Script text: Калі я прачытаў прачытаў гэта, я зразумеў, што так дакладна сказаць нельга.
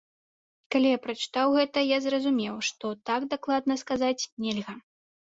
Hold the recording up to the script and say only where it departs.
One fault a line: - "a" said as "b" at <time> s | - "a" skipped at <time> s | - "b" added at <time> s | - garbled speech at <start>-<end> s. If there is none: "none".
- "прачытаў" skipped at 1.5 s